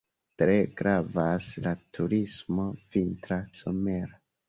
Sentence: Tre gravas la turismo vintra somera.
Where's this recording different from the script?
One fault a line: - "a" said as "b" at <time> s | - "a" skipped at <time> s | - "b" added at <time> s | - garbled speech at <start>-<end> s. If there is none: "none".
none